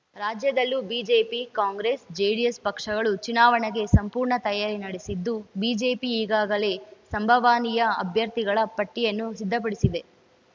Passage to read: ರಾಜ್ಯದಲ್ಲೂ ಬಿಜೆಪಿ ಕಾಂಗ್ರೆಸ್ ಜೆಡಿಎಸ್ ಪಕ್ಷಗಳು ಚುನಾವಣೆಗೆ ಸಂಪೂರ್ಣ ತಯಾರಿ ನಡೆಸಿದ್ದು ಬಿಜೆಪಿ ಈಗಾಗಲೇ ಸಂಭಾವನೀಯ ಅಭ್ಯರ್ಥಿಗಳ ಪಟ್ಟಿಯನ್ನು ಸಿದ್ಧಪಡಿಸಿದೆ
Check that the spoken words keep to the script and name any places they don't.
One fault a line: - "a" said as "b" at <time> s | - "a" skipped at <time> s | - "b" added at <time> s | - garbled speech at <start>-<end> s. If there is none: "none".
none